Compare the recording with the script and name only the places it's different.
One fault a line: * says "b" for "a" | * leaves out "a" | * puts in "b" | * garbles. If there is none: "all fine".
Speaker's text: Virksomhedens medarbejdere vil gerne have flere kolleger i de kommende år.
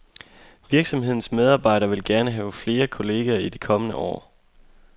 all fine